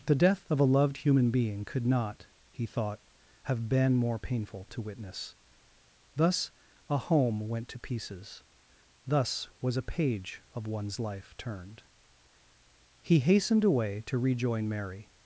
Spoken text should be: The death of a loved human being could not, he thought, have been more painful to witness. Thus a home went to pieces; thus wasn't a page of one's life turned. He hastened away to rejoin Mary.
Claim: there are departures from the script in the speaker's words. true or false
true